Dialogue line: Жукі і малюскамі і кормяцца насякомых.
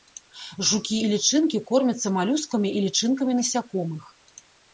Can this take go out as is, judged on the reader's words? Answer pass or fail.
fail